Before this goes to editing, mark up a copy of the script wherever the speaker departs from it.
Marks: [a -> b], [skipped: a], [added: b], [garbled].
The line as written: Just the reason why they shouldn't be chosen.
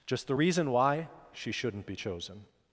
Just the reason why [they -> she] shouldn't be chosen.